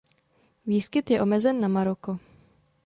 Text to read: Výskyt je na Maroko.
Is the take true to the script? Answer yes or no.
no